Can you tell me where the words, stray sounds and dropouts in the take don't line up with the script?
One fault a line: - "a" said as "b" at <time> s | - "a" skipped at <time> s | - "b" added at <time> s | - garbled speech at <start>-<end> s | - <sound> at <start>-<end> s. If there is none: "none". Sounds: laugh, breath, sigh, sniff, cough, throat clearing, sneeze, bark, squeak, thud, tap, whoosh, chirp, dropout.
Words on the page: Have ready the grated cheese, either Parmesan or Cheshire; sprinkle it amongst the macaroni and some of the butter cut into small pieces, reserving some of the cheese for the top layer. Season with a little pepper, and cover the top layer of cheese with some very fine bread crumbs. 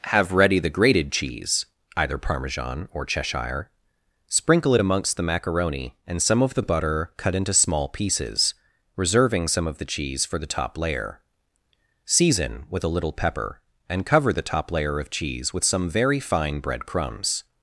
none